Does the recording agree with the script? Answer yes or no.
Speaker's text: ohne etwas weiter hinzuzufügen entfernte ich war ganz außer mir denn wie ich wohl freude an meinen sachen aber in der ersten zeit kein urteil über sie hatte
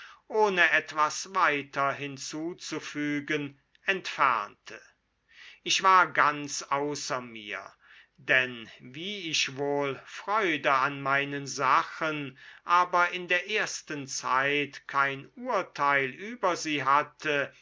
yes